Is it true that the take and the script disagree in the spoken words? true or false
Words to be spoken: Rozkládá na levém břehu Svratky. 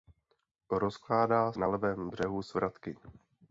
false